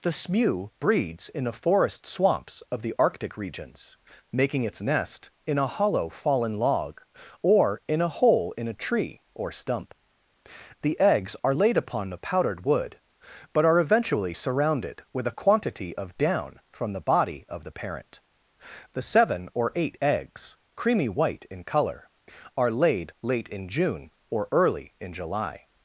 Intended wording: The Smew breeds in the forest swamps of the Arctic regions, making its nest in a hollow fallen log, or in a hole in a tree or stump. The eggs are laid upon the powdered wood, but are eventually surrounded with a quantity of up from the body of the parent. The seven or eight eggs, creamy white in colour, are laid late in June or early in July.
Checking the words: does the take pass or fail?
fail